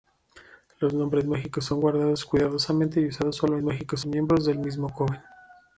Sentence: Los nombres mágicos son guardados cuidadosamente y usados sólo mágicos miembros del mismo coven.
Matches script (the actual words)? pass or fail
pass